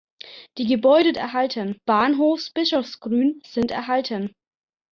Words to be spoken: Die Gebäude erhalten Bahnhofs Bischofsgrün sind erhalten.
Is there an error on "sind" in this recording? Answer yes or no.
no